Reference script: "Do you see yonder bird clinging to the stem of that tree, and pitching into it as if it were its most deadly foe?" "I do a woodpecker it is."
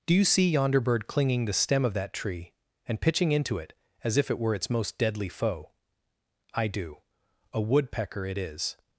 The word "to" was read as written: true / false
false